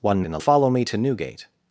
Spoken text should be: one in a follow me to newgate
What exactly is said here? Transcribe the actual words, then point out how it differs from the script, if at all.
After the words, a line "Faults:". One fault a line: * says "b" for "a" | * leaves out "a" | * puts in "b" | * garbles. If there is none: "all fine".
one in a follow me to newgate
Faults:
all fine